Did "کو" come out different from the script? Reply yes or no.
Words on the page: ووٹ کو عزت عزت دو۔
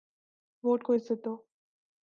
no